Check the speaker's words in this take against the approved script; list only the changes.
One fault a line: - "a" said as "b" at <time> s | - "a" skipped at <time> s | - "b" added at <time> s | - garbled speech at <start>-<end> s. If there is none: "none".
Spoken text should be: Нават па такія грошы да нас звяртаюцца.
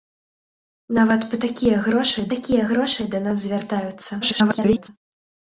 - "такія грошы" added at 2.3 s
- garbled speech at 4.2-4.9 s